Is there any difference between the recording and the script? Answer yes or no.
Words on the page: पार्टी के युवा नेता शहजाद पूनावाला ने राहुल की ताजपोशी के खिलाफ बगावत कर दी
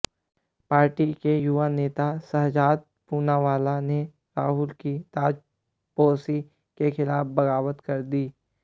no